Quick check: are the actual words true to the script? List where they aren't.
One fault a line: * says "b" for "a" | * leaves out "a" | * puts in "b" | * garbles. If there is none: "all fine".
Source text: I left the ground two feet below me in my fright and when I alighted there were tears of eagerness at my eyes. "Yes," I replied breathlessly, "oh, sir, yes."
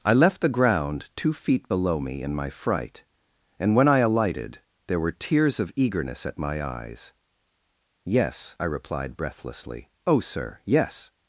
all fine